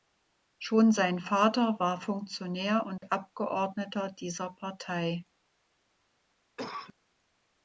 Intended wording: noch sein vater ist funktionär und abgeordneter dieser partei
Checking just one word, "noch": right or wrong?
wrong